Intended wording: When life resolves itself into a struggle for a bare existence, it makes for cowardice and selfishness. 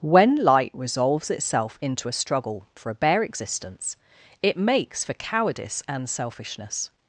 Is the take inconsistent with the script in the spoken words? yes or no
yes